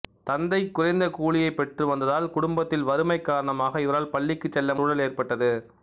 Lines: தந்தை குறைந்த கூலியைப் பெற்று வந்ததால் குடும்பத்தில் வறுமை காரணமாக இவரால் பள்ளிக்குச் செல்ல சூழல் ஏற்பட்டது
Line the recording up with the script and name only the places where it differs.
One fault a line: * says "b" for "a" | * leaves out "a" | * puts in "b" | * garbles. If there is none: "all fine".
all fine